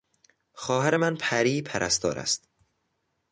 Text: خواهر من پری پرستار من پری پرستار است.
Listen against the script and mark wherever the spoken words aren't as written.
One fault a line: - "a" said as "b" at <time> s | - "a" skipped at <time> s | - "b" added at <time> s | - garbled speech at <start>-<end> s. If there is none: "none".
- "من پری پرستار" skipped at 2.2 s